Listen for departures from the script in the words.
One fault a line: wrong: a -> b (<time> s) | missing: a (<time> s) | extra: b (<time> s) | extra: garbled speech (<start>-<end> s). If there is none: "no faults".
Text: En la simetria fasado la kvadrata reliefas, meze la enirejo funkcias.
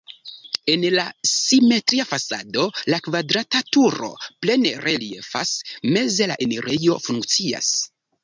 extra: turo plene (3.8 s)